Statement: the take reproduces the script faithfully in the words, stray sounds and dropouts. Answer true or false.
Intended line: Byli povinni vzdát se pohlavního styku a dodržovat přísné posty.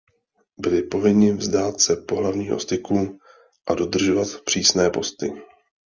true